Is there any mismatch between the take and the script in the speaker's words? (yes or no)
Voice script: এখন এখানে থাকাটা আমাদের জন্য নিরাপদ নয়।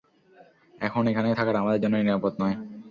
no